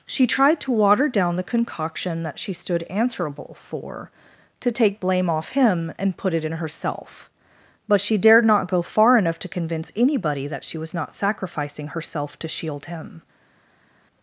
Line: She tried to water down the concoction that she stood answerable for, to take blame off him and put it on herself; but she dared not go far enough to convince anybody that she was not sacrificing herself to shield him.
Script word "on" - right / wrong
wrong